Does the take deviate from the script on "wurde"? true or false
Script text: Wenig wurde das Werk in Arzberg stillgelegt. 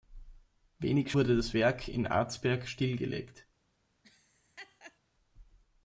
false